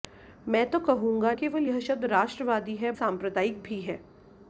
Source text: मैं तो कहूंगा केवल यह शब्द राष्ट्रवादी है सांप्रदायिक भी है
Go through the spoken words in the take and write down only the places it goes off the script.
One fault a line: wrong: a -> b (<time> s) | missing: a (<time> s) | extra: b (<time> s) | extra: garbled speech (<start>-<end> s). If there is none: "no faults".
no faults